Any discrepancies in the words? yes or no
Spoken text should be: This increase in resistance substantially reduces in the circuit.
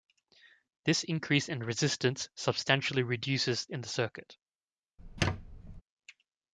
no